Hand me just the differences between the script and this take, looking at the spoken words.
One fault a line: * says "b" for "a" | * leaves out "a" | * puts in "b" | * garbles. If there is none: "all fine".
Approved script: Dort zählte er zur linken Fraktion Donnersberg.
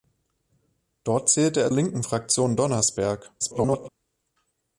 * leaves out "zur"
* garbles